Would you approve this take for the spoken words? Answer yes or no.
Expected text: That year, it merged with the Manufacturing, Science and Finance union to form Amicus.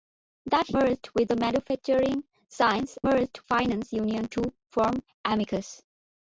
no